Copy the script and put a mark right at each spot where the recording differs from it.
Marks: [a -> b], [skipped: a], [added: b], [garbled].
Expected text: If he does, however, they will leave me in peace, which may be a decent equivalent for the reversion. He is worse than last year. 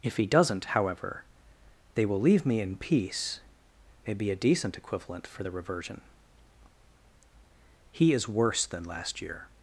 If he [does, -> doesn't] however, they will leave me in peace, [skipped: which] may be a decent equivalent for the reversion. He is worse than last year.